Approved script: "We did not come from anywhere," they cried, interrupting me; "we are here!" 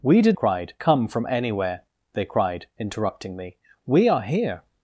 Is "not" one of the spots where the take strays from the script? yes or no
yes